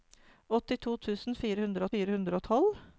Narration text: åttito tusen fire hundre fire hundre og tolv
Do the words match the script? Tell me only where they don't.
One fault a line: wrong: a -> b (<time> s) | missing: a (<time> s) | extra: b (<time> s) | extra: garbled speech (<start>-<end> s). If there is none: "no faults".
no faults